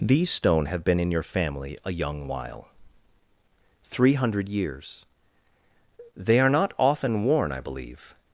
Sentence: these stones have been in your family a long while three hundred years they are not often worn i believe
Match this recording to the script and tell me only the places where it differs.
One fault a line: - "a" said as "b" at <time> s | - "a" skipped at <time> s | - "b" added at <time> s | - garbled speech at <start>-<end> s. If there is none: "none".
- "stones" said as "stone" at 0.3 s
- "long" said as "young" at 1.9 s